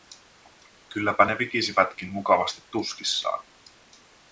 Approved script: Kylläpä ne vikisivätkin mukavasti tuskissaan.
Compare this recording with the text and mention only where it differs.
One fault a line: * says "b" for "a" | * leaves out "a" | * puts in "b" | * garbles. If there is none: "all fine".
all fine